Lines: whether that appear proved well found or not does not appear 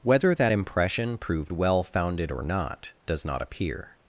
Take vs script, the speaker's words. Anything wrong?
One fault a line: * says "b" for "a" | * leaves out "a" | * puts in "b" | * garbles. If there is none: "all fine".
* says "impression" for "appear"
* says "founded" for "found"